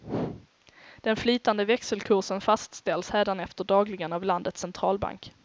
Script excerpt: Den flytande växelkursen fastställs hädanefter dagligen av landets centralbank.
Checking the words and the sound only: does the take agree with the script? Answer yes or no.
yes